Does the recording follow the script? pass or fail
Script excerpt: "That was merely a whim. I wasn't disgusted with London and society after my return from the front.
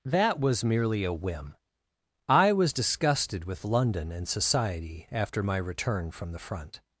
fail